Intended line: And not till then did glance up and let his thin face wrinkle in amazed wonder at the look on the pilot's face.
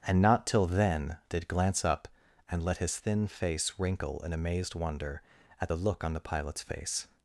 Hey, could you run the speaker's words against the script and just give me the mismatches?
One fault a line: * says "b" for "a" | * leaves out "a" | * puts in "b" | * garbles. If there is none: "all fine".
all fine